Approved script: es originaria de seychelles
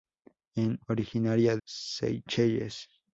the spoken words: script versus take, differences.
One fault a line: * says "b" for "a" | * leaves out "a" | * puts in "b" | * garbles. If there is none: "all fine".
* leaves out "de"